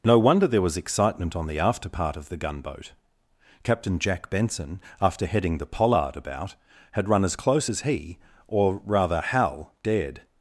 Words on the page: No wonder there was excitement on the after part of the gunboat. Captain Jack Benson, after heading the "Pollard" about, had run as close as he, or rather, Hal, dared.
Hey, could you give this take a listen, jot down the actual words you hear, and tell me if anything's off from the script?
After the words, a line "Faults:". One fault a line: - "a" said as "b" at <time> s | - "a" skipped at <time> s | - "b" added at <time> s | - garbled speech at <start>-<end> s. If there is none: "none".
No wonder there was excitement on the after part of the gunboat. Captain Jack Benson, after heading the "Pollard" about, had run as close as he, or rather, Hal, dared.
Faults:
none